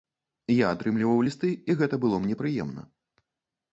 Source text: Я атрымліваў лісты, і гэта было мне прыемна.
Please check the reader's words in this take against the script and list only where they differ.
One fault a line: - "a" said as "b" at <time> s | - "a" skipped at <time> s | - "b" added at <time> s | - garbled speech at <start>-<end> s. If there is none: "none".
none